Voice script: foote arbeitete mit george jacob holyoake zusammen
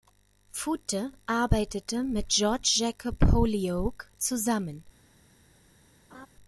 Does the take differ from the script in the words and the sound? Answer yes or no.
yes